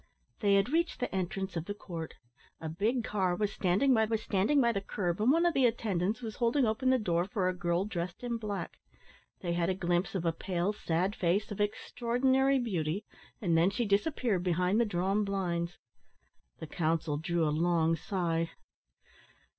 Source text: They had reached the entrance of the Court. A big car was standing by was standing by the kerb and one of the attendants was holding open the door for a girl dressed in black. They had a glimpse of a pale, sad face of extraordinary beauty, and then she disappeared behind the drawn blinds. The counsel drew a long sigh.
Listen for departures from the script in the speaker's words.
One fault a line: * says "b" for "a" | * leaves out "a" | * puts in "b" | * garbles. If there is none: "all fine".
all fine